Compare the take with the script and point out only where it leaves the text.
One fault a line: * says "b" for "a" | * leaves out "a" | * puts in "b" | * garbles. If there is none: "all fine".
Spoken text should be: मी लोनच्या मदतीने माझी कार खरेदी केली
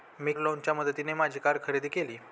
all fine